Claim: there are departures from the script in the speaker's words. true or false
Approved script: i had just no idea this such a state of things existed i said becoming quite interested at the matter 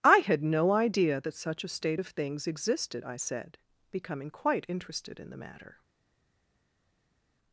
true